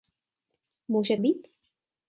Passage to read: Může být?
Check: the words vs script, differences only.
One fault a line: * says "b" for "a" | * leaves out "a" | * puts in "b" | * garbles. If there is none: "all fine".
all fine